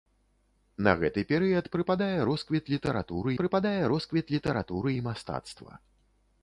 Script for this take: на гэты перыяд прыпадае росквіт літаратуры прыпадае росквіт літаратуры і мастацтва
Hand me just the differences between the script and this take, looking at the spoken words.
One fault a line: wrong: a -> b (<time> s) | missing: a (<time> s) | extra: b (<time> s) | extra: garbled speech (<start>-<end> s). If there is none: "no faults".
no faults